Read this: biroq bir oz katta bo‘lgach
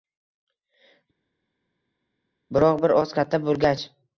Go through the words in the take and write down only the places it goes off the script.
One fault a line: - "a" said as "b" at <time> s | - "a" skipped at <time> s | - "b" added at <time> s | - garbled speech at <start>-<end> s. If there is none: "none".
none